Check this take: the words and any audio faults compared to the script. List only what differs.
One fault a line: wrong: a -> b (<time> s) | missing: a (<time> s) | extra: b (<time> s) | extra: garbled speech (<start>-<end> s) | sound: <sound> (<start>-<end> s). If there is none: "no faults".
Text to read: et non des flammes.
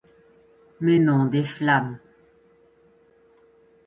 wrong: et -> mais (0.8 s)